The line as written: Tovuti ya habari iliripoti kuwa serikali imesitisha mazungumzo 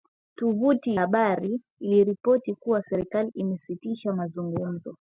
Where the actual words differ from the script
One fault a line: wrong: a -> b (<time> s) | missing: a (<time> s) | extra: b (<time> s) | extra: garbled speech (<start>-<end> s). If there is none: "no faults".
missing: ya (1.0 s)